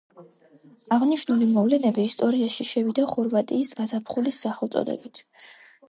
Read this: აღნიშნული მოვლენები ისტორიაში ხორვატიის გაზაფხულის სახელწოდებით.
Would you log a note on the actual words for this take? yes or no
yes